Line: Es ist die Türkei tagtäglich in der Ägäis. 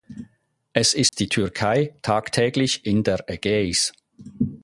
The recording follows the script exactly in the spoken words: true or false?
true